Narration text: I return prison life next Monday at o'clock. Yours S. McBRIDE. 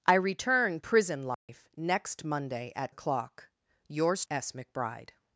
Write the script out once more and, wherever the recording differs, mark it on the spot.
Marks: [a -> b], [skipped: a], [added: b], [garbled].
I return prison life next Monday at o'clock. Yours S. McBRIDE.